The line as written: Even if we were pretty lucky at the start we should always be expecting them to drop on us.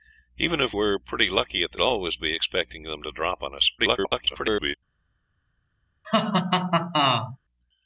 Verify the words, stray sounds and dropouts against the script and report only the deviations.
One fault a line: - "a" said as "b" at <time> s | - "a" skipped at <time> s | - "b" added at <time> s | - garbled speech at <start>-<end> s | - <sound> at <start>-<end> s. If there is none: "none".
- "we" skipped at 0.7 s
- "start we should" skipped at 1.8 s
- garbled speech at 3.8-4.8 s
- laugh at 6.0-7.4 s